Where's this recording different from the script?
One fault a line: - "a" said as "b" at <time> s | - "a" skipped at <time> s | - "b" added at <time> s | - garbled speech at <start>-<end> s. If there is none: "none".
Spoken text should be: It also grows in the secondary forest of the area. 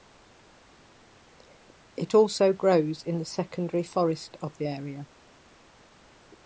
none